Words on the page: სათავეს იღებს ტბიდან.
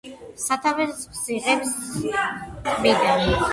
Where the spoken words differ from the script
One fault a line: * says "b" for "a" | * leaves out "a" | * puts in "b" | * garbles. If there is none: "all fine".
all fine